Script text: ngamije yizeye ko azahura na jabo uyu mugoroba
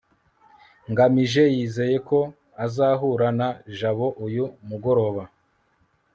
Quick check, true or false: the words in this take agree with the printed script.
true